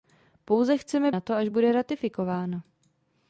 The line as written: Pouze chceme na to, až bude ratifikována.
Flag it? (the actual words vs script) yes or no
no